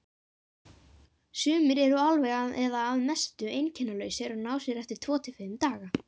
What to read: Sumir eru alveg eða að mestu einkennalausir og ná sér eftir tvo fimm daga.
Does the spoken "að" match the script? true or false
true